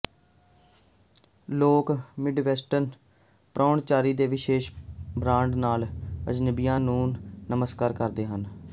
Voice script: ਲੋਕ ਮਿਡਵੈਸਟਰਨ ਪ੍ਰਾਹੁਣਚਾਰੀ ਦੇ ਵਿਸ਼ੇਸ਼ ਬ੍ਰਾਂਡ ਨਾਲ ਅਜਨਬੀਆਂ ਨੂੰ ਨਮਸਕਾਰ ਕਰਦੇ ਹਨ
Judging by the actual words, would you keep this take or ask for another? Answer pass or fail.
pass